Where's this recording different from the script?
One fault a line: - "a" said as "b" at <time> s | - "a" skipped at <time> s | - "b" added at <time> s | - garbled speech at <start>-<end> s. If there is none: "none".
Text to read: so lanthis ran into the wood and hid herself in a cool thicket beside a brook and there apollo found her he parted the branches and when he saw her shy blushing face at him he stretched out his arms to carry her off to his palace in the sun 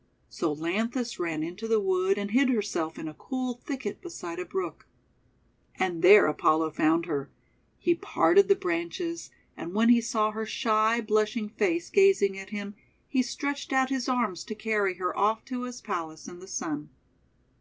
- "gazing" added at 11.9 s